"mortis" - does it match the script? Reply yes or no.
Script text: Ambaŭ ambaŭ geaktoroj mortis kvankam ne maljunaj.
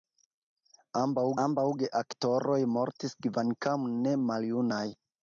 yes